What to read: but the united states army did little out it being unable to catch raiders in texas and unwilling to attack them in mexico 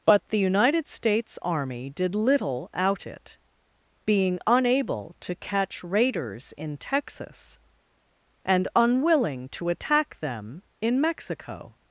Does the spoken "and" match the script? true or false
true